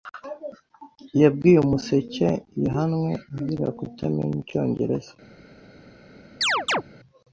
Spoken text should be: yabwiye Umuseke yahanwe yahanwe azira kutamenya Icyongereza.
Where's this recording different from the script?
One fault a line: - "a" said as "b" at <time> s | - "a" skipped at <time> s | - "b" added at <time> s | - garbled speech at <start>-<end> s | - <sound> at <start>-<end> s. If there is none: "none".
- "yahanwe" skipped at 3.1 s
- chirp at 6.4-6.8 s